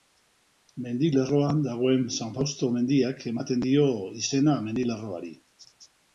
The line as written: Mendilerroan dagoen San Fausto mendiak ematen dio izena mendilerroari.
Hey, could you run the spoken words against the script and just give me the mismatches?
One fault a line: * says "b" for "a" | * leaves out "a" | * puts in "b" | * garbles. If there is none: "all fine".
all fine